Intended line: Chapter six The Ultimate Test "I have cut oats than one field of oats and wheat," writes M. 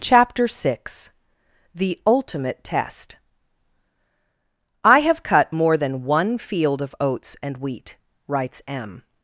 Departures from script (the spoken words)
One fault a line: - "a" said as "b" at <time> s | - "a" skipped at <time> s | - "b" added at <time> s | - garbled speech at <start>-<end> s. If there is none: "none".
- "oats" said as "more" at 5.5 s